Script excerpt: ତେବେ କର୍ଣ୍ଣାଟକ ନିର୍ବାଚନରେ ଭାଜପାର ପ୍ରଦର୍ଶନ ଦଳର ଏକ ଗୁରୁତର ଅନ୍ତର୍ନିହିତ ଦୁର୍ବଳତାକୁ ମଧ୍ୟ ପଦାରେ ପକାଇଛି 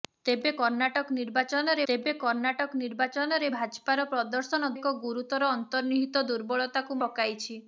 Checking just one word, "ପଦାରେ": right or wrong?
wrong